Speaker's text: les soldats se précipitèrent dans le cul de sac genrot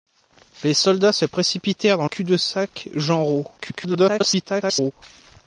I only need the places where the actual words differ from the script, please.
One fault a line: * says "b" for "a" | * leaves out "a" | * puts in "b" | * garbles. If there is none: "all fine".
* leaves out "le"
* garbles